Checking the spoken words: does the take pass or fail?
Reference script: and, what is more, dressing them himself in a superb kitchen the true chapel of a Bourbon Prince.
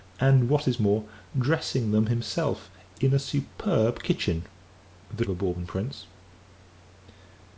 fail